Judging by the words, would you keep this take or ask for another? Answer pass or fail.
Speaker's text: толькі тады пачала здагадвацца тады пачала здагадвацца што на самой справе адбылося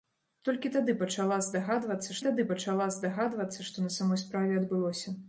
pass